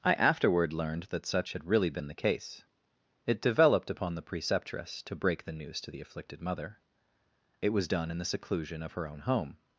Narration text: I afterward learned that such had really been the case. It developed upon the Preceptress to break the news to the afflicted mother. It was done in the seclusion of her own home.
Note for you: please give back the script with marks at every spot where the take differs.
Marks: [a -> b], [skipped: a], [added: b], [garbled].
I afterward learned that such had really been the case. It developed upon the Preceptress to break the news to the afflicted mother. It was done in the seclusion of her own home.